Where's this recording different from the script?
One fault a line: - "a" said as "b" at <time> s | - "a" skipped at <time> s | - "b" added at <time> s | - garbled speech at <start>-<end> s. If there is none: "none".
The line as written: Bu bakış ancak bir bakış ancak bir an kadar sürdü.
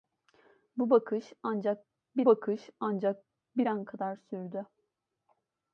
none